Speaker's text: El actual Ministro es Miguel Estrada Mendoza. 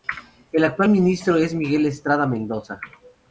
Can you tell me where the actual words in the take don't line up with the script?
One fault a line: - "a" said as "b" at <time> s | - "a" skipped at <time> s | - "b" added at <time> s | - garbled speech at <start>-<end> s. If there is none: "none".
none